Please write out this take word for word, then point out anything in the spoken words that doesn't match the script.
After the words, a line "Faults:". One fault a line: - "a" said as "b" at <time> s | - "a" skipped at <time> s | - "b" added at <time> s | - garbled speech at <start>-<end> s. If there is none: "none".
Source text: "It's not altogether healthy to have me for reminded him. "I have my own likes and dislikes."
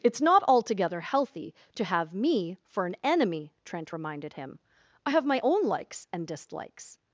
"It's not altogether healthy to have me for an enemy," Trent reminded him. "I have my own likes and dislikes."
Faults:
- "an enemy Trent" added at 2.9 s